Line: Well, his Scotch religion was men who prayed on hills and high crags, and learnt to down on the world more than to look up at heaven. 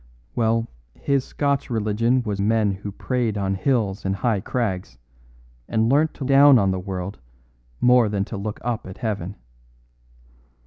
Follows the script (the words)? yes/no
yes